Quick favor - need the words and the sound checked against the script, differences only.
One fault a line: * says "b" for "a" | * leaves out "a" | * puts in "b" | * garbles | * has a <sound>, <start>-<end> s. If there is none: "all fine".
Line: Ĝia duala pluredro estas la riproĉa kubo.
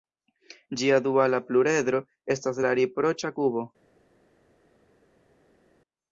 all fine